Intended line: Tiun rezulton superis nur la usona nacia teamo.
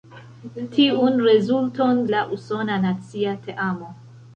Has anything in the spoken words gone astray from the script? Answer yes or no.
yes